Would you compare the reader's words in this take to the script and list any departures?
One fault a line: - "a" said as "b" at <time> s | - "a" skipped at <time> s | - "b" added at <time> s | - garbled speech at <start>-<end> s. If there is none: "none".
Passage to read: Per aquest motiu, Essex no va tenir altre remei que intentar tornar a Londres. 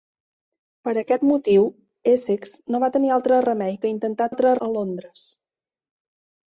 - "tornar" said as "altre" at 4.3 s